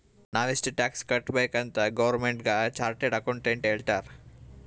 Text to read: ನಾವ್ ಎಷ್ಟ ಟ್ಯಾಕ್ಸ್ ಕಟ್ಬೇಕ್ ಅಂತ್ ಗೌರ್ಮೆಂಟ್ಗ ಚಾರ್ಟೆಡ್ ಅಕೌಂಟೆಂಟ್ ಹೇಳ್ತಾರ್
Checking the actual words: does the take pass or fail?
pass